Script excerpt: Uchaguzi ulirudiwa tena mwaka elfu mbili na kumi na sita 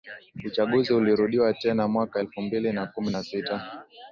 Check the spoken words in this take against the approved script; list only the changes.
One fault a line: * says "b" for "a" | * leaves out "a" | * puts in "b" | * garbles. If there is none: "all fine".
all fine